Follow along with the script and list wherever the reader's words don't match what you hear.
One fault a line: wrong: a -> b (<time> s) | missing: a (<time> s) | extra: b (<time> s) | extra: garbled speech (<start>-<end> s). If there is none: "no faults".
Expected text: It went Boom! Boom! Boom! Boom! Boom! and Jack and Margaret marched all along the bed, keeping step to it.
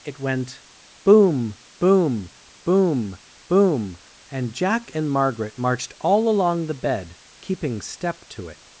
missing: Boom (4.0 s)